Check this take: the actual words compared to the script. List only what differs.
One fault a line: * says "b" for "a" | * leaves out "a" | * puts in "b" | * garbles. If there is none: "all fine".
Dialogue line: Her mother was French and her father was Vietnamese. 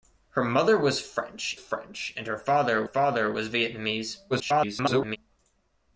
* puts in "French"
* puts in "father"
* garbles